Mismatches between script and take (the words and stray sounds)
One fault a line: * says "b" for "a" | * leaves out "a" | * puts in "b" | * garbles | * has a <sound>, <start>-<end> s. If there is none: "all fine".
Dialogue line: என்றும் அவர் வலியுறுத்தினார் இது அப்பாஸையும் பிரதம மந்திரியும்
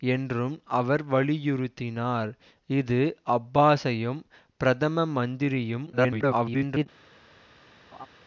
* garbles
* has a laugh, 7.9-8.1 s